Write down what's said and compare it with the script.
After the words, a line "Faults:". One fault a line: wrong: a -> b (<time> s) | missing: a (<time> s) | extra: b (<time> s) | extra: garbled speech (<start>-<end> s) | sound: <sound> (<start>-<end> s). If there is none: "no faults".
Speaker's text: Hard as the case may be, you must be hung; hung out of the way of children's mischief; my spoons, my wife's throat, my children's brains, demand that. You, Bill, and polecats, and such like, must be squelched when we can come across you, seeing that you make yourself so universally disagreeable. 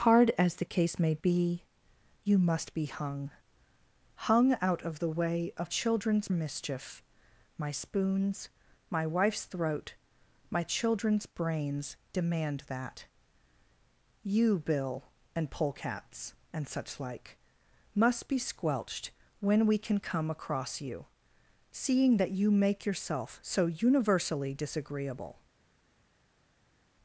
Hard as the case may be, you must be hung; hung out of the way of children's mischief; my spoons, my wife's throat, my children's brains, demand that. You, Bill, and polecats, and such like, must be squelched when we can come across you, seeing that you make yourself so universally disagreeable.
Faults:
no faults